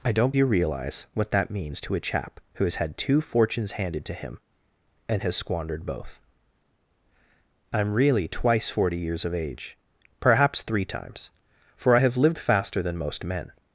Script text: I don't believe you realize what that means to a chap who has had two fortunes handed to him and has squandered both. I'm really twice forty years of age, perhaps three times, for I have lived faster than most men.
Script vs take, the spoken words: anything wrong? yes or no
yes